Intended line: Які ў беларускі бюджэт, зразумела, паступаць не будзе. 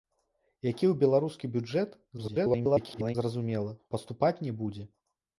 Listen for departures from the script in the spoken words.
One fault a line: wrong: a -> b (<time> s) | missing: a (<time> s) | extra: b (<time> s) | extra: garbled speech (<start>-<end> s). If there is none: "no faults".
extra: garbled speech (2.2-3.2 s)